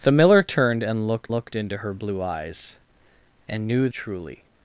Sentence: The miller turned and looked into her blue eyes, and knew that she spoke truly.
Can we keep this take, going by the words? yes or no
no